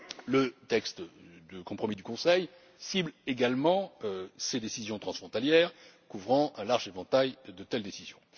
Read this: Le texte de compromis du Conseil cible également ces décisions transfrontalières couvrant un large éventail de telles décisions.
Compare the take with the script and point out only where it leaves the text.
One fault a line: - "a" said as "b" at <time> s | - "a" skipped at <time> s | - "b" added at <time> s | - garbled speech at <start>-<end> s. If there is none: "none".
none